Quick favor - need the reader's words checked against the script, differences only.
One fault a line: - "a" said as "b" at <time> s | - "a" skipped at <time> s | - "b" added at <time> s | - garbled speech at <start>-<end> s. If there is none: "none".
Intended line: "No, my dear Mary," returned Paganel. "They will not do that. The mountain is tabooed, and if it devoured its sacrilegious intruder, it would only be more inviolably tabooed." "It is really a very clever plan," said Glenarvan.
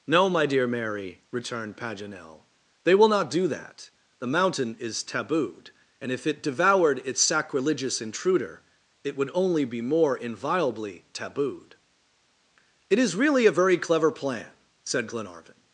none